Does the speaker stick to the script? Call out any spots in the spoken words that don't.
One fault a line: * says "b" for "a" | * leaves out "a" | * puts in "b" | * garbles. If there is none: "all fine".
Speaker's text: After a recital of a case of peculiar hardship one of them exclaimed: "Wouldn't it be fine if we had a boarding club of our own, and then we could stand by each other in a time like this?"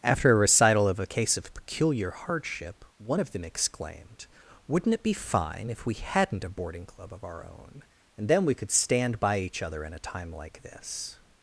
* says "hadn't" for "had"